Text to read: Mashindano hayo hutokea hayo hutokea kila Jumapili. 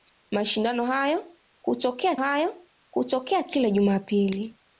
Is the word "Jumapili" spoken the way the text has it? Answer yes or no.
yes